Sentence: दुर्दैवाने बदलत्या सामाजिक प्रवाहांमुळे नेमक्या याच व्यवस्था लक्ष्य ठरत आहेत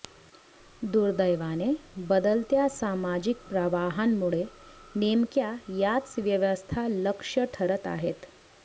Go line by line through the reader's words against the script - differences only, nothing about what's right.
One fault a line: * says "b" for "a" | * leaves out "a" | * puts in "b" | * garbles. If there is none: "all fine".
all fine